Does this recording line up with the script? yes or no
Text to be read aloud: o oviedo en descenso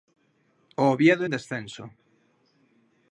no